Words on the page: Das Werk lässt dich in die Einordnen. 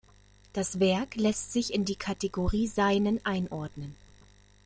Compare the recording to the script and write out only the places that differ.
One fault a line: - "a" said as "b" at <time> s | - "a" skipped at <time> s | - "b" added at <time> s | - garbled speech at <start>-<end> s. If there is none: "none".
- "dich" said as "sich" at 1.5 s
- "Kategorie Seinen" added at 1.9 s